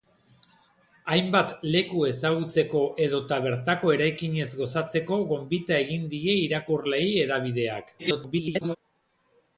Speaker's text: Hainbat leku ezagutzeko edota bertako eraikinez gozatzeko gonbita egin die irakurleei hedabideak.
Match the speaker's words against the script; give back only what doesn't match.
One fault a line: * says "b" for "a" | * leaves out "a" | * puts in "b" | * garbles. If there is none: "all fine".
* garbles